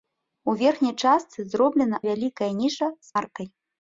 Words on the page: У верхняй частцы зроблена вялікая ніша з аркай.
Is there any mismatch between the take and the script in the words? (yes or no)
no